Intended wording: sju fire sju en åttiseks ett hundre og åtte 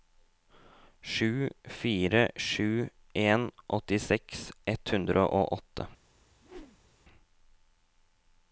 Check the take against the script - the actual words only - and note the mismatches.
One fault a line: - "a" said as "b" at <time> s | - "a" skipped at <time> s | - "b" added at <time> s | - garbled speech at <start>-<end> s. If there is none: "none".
none